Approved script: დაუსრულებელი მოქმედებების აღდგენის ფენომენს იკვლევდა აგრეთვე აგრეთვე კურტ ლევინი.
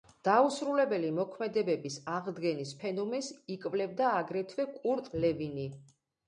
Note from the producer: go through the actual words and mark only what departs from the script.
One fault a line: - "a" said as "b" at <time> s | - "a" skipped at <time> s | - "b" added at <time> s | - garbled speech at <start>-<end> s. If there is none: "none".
- "აგრეთვე" skipped at 4.7 s